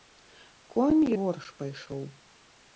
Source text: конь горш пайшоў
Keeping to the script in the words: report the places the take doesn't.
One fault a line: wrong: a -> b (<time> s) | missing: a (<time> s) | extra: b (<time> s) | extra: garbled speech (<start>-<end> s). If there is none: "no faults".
no faults